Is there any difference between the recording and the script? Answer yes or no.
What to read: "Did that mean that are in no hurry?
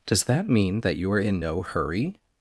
yes